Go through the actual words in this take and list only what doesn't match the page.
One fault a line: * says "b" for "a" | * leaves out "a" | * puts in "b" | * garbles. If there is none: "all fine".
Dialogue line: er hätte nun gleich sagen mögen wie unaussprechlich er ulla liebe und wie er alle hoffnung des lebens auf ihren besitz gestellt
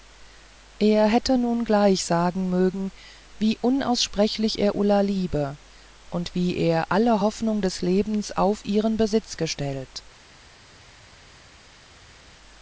all fine